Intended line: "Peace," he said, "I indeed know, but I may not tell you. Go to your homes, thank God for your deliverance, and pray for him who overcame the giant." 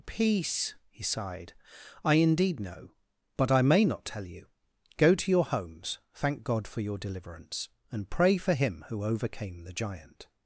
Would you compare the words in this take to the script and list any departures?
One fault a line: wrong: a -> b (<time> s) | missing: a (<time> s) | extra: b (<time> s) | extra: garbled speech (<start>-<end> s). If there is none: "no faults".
wrong: said -> sighed (1.0 s)